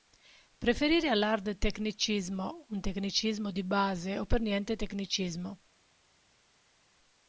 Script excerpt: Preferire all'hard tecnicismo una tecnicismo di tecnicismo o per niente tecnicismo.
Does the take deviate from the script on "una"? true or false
true